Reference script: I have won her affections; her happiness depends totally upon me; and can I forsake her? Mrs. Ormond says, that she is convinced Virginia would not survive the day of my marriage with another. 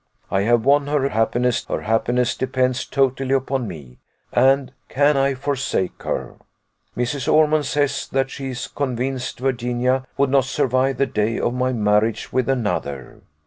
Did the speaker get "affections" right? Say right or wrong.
wrong